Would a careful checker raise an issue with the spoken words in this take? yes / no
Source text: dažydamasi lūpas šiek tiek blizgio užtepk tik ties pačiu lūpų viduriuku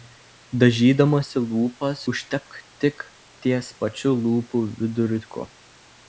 yes